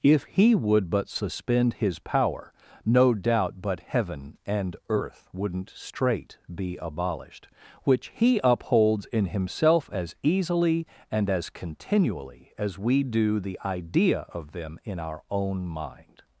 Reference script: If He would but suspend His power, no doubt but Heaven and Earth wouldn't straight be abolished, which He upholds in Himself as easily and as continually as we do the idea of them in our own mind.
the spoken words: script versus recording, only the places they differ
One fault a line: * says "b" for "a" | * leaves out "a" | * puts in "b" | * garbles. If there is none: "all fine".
all fine